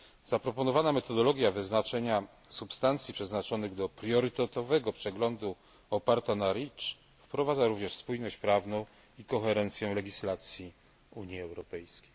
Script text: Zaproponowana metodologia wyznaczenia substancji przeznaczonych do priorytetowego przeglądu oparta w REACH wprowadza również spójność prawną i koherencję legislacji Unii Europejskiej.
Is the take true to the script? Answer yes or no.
no